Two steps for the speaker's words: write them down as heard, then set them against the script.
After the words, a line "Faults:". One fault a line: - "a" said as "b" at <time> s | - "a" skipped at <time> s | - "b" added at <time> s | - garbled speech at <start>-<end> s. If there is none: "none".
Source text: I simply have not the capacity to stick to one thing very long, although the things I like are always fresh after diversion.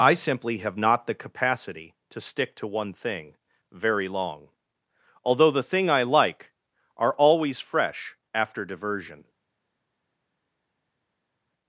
I simply have not the capacity to stick to one thing very long, although the thing I like are always fresh after diversion.
Faults:
- "things" said as "thing" at 5.6 s